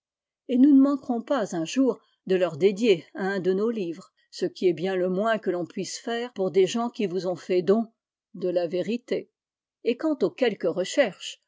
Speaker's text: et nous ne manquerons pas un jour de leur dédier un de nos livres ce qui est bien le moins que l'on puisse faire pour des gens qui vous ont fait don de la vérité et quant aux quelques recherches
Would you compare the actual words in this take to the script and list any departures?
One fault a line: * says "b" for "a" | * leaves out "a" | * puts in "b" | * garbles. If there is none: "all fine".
all fine